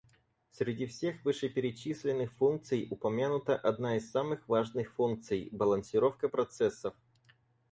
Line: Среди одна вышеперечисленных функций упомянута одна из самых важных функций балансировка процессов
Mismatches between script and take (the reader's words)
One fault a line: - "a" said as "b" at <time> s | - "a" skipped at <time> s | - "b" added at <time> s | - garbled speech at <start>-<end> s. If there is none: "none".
- "одна" said as "всех" at 0.9 s